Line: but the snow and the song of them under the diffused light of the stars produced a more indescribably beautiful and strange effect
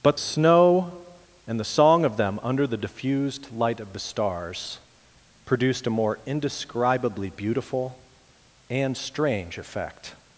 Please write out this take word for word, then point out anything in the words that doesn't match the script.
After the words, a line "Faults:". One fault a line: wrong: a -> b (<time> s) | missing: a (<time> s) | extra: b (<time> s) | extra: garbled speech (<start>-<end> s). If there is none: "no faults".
but snow and the song of them under the diffused light of the stars produced a more indescribably beautiful and strange effect
Faults:
missing: the (0.2 s)